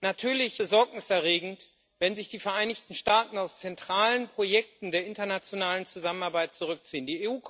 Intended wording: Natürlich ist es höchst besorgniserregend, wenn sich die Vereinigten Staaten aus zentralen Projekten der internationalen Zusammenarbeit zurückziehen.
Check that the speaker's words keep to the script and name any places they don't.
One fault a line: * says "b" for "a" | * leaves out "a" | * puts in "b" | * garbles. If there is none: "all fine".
* leaves out "ist es höchst"